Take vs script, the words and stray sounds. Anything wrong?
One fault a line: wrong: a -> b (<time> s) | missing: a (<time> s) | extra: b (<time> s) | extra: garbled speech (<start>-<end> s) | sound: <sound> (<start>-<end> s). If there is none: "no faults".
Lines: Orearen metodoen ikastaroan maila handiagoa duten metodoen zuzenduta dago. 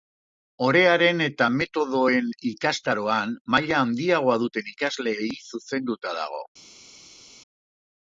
extra: eta (1.2 s)
wrong: metodoen -> ikasleei (4.8 s)